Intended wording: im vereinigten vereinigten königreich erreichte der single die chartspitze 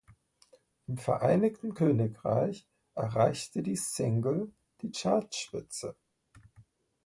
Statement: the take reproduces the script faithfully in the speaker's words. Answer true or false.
false